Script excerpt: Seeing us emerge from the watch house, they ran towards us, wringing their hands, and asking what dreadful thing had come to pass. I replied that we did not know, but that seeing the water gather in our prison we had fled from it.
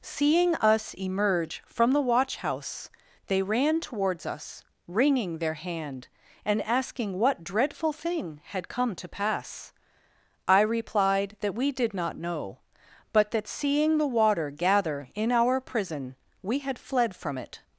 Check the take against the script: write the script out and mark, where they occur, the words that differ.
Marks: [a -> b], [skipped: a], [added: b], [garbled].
Seeing us emerge from the watch house, they ran towards us, wringing their [hands, -> hand] and asking what dreadful thing had come to pass. I replied that we did not know, but that seeing the water gather in our prison we had fled from it.